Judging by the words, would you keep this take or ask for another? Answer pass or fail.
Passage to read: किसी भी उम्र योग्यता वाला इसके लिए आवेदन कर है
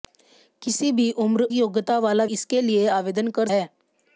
pass